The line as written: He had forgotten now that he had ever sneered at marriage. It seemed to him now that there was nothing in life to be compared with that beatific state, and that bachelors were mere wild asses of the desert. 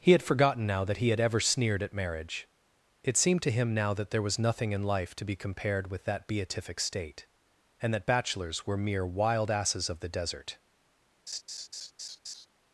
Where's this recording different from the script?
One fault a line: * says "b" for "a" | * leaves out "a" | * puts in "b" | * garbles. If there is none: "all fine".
all fine